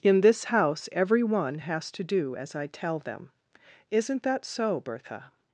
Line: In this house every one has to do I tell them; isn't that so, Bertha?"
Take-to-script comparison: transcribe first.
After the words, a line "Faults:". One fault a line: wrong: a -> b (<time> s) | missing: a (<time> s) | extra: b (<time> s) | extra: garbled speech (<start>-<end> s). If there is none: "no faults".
In this house every one has to do as I tell them; isn't that so, Bertha?"
Faults:
extra: as (2.4 s)